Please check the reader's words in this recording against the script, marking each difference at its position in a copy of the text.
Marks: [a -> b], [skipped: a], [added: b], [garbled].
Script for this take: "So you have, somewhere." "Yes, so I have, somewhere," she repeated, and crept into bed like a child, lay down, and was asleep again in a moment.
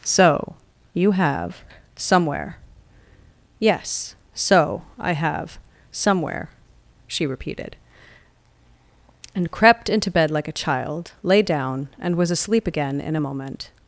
"So you have, somewhere." "Yes, so I have, somewhere," she repeated, and crept into bed like a child, lay down, and was asleep again in a moment.